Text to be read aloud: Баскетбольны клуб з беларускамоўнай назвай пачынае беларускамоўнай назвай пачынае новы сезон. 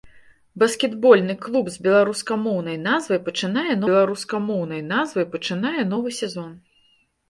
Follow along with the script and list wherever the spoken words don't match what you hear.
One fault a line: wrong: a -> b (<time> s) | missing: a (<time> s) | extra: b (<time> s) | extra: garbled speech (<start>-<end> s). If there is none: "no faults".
no faults